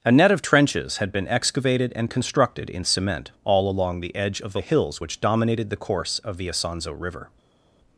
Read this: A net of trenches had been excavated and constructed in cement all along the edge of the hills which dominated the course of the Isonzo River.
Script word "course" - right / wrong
right